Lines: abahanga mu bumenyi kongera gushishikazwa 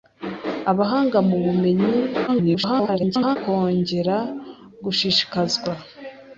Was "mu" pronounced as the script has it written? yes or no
yes